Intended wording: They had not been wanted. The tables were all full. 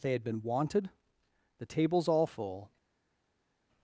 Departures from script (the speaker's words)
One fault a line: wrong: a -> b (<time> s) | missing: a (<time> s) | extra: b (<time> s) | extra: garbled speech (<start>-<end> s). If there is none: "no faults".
missing: not (0.2 s)
missing: were (2.1 s)